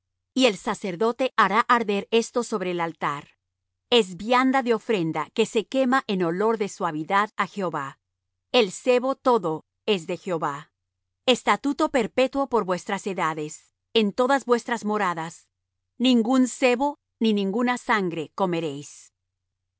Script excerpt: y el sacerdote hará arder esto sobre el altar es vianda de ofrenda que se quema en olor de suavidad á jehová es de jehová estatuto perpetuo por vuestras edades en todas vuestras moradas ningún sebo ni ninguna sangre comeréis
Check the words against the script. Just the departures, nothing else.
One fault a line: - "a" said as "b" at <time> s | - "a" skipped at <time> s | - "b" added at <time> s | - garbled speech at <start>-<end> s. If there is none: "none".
- "el sebo todo" added at 8.5 s